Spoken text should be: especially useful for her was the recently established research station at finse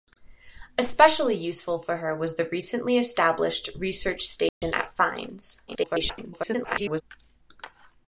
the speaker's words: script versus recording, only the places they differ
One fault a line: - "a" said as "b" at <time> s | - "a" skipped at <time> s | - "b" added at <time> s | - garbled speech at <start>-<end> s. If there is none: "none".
- garbled speech at 5.7-7.0 s